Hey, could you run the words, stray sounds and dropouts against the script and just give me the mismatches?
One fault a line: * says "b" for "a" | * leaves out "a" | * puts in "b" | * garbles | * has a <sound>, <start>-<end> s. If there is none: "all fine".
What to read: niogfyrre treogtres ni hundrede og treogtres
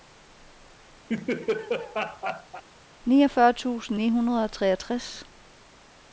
* has a laugh, 1.1-2.6 s
* says "tusind" for "treogtres"